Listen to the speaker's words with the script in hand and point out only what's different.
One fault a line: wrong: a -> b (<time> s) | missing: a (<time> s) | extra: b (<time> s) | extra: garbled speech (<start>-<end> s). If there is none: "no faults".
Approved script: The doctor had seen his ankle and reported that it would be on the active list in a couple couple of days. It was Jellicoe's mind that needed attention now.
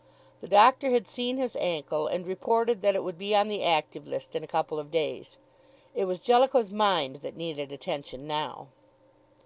missing: couple (4.8 s)